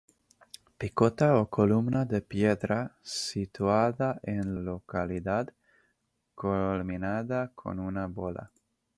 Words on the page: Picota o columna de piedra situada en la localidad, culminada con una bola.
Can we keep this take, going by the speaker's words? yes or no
no